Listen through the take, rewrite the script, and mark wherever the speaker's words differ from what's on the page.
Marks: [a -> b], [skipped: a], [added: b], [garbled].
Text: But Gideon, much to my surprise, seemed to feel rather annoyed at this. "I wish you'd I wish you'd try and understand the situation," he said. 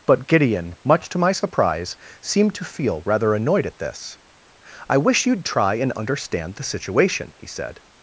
But Gideon, much to my surprise, seemed to feel rather annoyed at this. "I wish you'd [skipped: I wish you'd] try and understand the situation," he said.